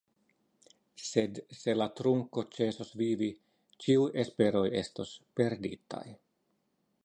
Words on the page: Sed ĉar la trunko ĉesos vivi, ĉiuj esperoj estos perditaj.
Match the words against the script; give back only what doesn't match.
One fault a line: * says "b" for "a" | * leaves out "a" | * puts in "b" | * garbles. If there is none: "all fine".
* says "se" for "ĉar"